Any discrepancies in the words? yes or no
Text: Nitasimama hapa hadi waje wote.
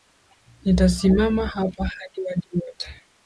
no